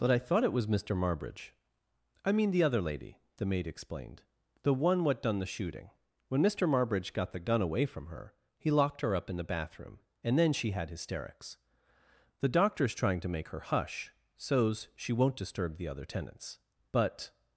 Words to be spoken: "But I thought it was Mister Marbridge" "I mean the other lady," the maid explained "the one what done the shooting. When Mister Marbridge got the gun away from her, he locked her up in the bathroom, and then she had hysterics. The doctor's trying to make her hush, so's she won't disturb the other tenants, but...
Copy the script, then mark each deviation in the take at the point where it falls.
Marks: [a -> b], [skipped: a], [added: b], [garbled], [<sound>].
"But I thought it was Mister Marbridge" "I mean the other lady," the maid explained "the one what done the shooting. When Mister Marbridge got the gun away from her, he locked her up in the bathroom, and then she had hysterics. The doctor's trying to make her hush, so's she won't disturb the other tenants, but...